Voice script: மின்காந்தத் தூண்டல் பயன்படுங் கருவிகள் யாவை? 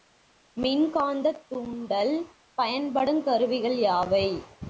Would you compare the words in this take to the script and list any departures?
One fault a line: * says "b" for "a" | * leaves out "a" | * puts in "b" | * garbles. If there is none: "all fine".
all fine